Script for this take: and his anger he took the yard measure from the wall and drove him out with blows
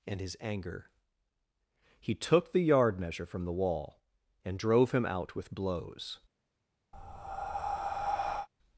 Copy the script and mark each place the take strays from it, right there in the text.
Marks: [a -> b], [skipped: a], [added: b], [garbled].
and his anger he took the yard measure from the wall and drove him out with blows